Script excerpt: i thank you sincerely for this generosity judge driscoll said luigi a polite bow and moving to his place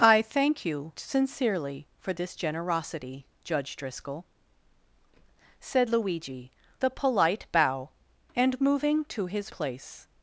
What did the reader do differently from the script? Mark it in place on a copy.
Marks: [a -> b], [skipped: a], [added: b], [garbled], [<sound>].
i thank you sincerely for this generosity judge driscoll said luigi a polite bow and moving to his place